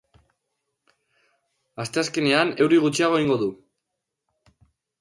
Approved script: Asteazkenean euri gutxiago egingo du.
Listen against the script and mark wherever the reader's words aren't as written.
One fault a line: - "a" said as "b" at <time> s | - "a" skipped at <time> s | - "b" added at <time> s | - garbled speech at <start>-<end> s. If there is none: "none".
none